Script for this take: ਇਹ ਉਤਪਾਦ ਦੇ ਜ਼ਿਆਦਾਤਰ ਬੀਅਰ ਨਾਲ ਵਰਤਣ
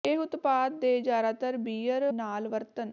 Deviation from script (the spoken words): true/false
false